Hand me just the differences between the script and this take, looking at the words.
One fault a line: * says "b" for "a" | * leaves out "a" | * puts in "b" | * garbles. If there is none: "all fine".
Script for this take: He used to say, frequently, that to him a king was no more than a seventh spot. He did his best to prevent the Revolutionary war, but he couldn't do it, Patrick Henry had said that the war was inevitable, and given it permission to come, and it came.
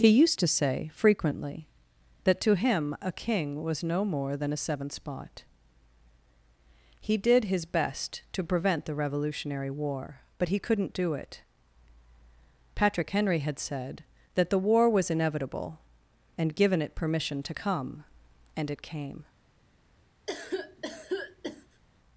all fine